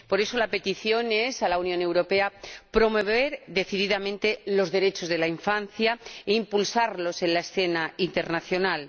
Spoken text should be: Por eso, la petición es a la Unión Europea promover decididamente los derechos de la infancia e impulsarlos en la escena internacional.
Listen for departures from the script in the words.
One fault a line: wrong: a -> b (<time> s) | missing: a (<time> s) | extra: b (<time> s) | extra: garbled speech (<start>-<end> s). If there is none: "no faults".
no faults